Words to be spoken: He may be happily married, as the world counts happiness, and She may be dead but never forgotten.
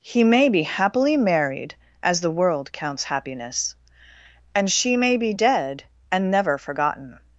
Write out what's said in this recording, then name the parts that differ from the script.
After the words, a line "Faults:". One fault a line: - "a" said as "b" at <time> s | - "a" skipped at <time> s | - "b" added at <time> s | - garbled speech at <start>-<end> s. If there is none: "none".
He may be happily married, as the world counts happiness, and She may be dead and never forgotten.
Faults:
- "but" said as "and" at 6.1 s